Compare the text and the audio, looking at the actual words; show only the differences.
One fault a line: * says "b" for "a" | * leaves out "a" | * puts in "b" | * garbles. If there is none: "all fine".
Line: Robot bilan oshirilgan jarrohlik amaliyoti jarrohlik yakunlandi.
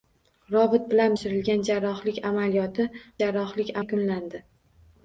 all fine